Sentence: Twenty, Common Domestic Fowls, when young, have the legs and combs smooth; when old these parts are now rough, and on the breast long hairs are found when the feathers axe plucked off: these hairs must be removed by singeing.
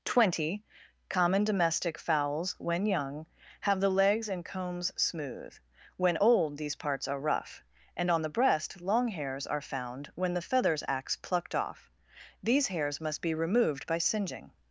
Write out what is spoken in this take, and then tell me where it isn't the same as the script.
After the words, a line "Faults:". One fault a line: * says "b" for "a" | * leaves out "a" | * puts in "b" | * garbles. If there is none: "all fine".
Twenty, Common Domestic Fowls, when young, have the legs and combs smooth; when old these parts are rough, and on the breast long hairs are found when the feathers axe plucked off: these hairs must be removed by singeing.
Faults:
* leaves out "now"